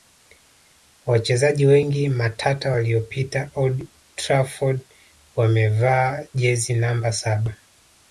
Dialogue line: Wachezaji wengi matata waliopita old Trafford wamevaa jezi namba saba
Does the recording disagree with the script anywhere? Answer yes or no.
no